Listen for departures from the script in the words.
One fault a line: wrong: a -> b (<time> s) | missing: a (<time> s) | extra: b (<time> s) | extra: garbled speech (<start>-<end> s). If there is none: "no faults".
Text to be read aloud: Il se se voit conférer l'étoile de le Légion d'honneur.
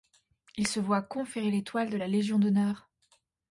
missing: se (0.8 s)
wrong: le -> la (2.0 s)